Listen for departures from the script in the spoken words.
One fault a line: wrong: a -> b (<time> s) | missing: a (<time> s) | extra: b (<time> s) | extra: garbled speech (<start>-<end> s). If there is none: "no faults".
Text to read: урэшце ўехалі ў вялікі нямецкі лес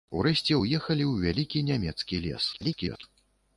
extra: garbled speech (2.5-3.0 s)